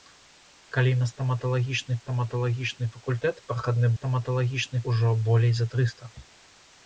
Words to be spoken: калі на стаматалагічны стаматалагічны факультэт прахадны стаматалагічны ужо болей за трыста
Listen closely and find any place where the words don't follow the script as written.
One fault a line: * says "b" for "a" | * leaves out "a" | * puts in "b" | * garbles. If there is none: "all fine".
all fine